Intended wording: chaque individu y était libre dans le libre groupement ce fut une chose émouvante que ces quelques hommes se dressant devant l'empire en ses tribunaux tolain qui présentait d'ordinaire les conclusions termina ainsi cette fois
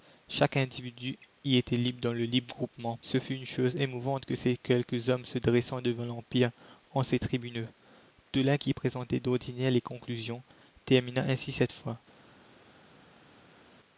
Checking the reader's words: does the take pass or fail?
pass